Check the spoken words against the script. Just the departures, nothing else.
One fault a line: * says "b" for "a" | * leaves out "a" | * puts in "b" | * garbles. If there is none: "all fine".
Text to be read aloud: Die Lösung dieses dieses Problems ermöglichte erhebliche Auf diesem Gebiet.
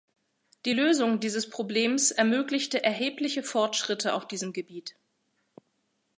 * leaves out "dieses"
* puts in "Fortschritte"